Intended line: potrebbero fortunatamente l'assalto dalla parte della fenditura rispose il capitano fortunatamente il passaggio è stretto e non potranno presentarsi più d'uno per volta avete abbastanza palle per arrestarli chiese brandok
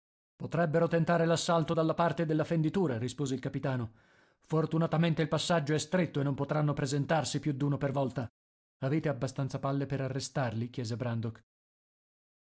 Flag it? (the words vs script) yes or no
yes